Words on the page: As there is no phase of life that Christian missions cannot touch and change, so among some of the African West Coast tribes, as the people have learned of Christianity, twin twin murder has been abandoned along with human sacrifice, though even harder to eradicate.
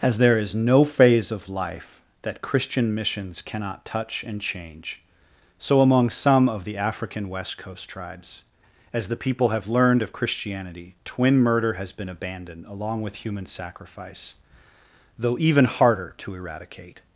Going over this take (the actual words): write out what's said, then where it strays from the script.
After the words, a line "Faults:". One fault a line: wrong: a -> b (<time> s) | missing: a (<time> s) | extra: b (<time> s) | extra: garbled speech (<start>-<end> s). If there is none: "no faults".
As there is no phase of life that Christian missions cannot touch and change, so among some of the African West Coast tribes, as the people have learned of Christianity, twin murder has been abandoned along with human sacrifice, though even harder to eradicate.
Faults:
missing: twin (11.4 s)